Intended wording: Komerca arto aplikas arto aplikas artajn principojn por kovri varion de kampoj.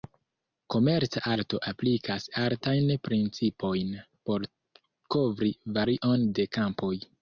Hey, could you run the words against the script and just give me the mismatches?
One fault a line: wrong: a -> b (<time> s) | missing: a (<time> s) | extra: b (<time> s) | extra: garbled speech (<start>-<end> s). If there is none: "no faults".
missing: arto aplikas (2.3 s)